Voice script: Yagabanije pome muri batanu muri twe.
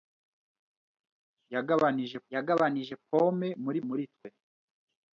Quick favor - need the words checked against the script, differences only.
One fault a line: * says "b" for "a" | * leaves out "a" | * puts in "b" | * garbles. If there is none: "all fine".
* puts in "yagabanije"
* leaves out "batanu"